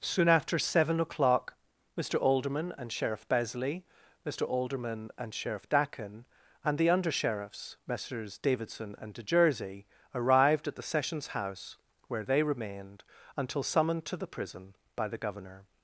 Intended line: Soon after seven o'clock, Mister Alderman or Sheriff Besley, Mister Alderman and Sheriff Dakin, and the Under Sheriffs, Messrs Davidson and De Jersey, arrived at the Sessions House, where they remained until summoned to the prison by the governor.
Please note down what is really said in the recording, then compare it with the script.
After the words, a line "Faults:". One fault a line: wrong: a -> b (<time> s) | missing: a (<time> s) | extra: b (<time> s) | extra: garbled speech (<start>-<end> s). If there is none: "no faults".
Soon after seven o'clock, Mister Alderman and Sheriff Besley, Mister Alderman and Sheriff Dakin, and the Under Sheriffs, Messrs Davidson and De Jersey, arrived at the Sessions House, where they remained until summoned to the prison by the governor.
Faults:
wrong: or -> and (2.8 s)